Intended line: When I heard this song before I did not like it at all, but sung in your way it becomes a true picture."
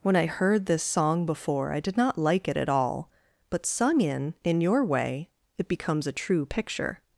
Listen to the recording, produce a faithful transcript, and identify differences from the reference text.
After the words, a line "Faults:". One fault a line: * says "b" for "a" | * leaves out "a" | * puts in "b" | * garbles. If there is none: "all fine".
When I heard this song before I did not like it at all, but sung in in your way it becomes a true picture."
Faults:
* puts in "in"